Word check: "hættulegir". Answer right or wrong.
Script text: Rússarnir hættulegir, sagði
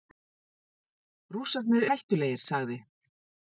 right